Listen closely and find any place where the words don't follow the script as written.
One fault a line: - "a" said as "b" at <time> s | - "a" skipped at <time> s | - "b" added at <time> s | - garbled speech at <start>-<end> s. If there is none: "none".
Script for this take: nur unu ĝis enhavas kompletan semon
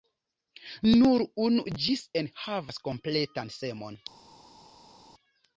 none